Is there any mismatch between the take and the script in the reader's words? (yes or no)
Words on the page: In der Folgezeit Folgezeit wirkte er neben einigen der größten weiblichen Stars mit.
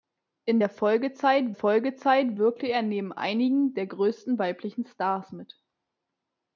no